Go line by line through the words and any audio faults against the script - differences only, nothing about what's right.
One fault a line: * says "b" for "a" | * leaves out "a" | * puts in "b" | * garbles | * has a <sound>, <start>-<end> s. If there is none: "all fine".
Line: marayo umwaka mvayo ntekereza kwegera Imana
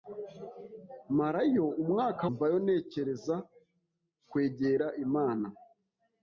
all fine